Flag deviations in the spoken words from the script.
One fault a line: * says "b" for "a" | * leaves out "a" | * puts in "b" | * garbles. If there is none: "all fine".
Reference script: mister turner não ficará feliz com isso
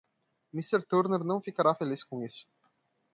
all fine